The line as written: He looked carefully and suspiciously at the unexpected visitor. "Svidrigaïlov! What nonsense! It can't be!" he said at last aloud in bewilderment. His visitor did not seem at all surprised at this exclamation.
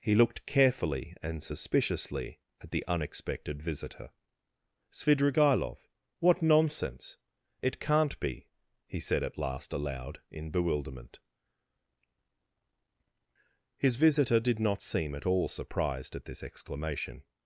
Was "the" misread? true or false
false